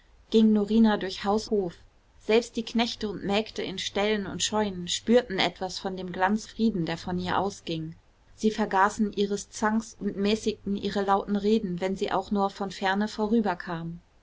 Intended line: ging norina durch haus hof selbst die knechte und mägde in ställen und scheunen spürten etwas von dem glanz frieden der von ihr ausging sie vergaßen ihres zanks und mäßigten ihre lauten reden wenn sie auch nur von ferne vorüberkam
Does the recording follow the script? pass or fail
pass